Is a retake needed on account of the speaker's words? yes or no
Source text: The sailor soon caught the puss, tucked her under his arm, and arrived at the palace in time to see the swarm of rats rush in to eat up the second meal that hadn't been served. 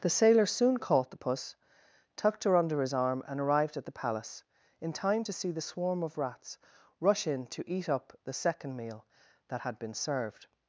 yes